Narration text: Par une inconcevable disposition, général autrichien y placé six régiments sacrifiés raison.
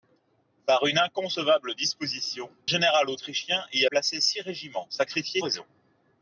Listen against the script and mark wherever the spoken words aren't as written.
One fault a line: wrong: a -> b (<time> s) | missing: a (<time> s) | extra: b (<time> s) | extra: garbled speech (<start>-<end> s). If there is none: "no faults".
no faults